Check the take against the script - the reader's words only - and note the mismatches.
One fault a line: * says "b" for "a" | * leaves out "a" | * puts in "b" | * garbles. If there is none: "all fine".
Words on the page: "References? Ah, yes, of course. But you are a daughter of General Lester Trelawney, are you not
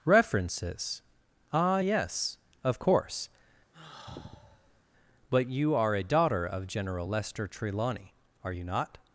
all fine